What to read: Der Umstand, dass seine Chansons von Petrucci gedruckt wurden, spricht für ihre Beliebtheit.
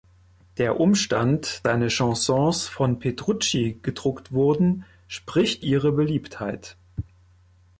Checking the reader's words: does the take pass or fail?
fail